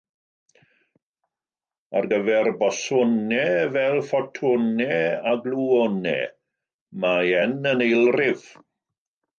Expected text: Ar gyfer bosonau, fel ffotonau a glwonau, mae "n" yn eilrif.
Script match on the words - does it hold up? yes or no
yes